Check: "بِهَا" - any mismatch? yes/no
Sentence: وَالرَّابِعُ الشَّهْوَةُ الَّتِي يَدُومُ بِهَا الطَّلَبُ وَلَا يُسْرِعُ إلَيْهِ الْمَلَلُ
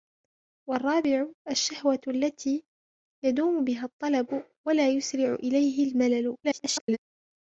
no